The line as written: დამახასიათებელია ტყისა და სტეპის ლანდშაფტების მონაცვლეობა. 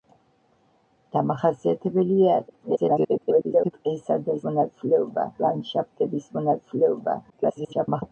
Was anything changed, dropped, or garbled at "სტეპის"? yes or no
yes